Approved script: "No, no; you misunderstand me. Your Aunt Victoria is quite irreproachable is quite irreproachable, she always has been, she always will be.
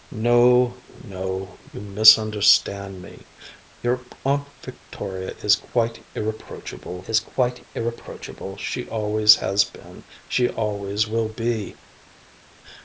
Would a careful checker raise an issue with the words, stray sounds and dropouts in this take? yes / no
no